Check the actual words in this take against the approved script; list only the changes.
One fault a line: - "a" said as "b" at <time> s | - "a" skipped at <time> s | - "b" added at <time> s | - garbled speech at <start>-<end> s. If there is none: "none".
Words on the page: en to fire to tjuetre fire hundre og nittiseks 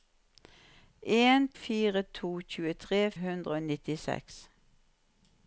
- "to" skipped at 1.5 s
- "fire" skipped at 3.0 s